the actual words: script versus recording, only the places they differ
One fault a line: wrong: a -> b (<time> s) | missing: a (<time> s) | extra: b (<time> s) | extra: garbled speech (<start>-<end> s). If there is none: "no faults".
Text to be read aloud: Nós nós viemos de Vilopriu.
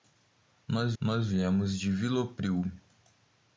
no faults